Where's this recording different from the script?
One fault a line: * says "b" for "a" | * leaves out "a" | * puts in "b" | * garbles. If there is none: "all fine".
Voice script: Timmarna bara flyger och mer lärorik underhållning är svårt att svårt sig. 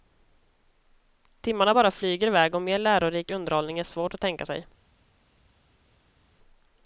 * puts in "iväg"
* says "tänka" for "svårt"